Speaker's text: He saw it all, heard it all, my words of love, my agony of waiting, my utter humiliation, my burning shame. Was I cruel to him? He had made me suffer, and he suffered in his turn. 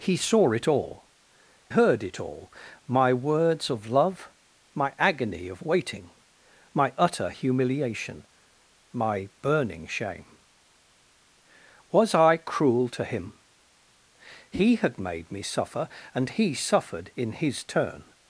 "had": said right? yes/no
yes